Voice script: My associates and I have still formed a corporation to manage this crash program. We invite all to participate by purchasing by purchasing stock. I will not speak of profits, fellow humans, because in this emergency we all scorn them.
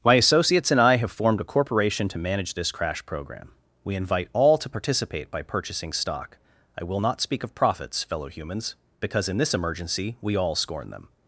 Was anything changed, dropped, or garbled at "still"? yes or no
yes